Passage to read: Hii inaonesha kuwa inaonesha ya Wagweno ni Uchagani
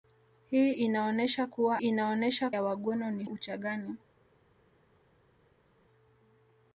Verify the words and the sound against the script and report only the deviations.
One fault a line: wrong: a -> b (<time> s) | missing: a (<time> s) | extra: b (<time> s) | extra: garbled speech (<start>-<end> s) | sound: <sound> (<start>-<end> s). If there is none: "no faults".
no faults